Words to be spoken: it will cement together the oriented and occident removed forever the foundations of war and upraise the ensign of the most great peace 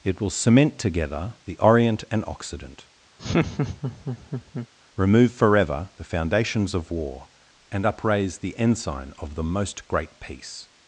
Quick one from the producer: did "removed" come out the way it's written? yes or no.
no